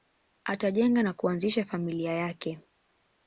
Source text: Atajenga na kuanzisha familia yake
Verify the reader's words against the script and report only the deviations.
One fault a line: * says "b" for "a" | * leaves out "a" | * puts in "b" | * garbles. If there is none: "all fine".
all fine